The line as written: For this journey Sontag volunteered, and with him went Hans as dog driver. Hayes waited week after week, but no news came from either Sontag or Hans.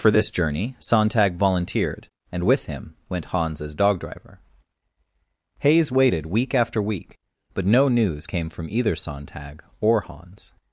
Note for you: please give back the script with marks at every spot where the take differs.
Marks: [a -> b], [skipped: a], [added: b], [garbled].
For this journey Sontag volunteered, and with him went Hans as dog driver. Hayes waited week after week, but no news came from either Sontag or Hans.